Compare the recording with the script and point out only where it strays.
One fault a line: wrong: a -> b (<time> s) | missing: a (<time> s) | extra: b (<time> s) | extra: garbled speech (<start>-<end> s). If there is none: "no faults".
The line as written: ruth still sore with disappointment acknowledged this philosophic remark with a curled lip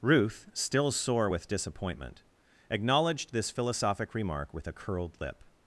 no faults